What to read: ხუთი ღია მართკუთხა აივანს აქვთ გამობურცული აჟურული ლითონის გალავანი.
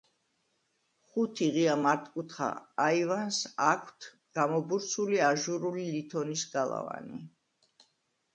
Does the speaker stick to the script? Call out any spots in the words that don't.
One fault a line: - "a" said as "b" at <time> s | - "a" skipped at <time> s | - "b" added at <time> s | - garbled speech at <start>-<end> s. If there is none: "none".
none